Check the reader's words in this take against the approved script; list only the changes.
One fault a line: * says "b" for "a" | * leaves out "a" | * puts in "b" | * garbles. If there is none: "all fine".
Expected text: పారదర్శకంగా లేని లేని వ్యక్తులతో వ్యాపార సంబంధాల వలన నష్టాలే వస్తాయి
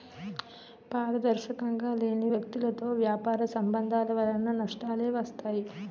* leaves out "లేని"